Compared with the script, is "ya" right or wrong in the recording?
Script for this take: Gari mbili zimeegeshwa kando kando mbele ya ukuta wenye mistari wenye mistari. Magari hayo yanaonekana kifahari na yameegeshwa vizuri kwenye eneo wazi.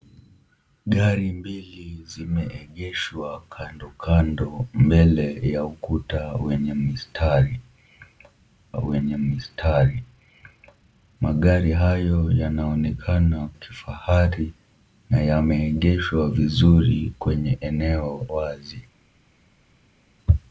right